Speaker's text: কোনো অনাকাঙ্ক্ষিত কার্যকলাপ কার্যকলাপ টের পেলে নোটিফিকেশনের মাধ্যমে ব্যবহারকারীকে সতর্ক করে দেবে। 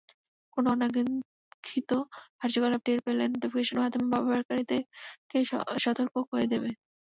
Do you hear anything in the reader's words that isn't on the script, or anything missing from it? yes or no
yes